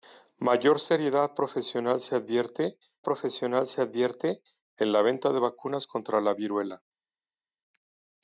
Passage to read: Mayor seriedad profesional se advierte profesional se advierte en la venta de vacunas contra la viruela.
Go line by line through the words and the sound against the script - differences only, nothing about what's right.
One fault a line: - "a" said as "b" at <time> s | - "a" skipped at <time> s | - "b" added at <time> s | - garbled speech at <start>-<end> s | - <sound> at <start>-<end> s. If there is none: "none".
none